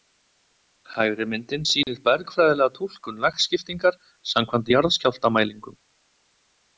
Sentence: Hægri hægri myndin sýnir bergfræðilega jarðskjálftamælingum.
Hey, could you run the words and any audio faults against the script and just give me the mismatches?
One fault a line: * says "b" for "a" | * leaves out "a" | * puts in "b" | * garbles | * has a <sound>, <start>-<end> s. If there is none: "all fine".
* leaves out "hægri"
* has a dropout, 1.8-1.9 s
* puts in "túlkun lagskiptingar samkvæmt"